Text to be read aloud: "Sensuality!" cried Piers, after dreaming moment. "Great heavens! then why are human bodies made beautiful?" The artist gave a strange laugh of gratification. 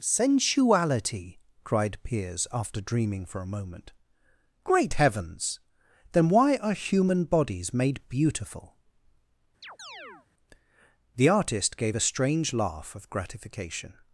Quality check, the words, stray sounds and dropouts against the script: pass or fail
fail